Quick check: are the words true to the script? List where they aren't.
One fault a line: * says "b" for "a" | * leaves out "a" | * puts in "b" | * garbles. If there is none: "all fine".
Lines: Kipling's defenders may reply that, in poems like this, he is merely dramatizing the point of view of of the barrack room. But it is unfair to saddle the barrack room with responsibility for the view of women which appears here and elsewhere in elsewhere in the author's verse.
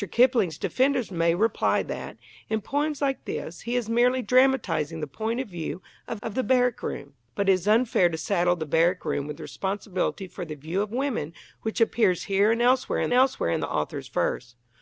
all fine